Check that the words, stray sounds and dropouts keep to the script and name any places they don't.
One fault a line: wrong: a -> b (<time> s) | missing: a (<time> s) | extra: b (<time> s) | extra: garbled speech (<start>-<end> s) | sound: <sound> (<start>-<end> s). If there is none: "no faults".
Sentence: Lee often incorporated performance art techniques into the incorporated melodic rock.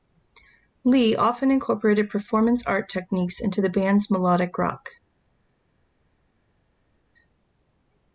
wrong: incorporated -> band's (3.7 s)